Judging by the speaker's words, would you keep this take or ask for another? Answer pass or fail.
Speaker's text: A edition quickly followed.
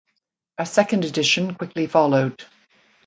fail